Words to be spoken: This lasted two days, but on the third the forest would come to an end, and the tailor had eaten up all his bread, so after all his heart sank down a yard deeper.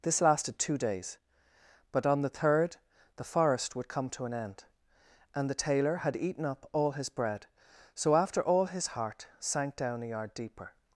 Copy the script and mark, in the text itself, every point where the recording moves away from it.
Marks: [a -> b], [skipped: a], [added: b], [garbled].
This lasted two days, but on the third the forest would come to an end, and the tailor had eaten up all his bread, so after all his heart sank down a yard deeper.